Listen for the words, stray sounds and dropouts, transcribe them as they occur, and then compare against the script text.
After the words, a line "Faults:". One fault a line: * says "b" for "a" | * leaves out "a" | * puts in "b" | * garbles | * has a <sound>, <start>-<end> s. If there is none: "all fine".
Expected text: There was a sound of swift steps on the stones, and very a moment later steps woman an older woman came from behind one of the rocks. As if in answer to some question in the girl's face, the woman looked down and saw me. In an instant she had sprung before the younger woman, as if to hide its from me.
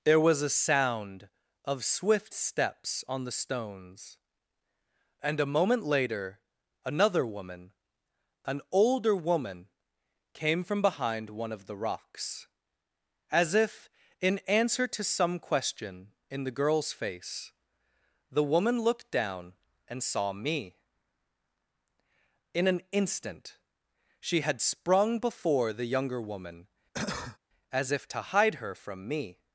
There was a sound of swift steps on the stones, and a moment later another woman an older woman came from behind one of the rocks. As if in answer to some question in the girl's face, the woman looked down and saw me. In an instant she had sprung before the younger woman, as if to hide her from me.
Faults:
* leaves out "very"
* says "another" for "steps"
* has a cough, 26.9-27.4 s
* says "her" for "its"